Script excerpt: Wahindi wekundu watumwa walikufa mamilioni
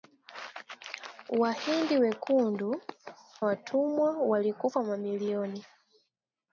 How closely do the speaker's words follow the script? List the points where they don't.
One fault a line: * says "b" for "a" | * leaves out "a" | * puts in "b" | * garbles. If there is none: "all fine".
all fine